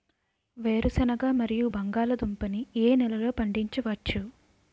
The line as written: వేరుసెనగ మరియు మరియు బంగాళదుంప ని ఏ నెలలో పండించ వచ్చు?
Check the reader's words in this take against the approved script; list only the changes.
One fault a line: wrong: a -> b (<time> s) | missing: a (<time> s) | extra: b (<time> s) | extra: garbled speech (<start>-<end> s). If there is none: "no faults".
missing: మరియు (1.7 s)